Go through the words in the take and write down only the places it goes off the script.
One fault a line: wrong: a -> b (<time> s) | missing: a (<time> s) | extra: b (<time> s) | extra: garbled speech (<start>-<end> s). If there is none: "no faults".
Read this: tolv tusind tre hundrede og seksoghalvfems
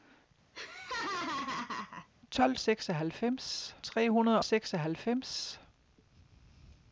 wrong: tusind -> seksoghalvfems (2.6 s)
missing: og (4.4 s)